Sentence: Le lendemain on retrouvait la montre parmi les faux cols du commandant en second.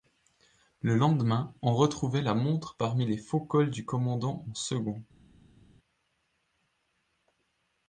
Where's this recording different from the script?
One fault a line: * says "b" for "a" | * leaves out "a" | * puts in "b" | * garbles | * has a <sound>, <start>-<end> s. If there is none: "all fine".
all fine